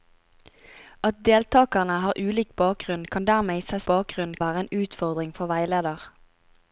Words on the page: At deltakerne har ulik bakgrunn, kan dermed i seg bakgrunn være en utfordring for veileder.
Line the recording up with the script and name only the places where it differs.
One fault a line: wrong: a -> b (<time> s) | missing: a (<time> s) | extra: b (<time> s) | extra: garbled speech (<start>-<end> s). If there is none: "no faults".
no faults